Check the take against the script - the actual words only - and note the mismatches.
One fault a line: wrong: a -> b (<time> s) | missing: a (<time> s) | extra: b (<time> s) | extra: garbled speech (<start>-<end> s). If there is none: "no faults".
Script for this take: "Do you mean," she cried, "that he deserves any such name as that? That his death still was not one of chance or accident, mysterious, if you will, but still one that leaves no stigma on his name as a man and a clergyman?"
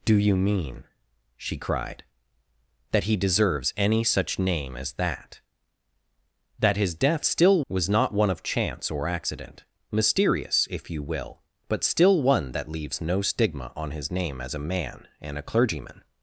no faults